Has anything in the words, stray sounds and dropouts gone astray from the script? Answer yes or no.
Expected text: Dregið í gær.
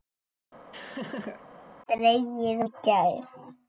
yes